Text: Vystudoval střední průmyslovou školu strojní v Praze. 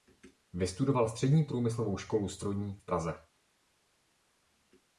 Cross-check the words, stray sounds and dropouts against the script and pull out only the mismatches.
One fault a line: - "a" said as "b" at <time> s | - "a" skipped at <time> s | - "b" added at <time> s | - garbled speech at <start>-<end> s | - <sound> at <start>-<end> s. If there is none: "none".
none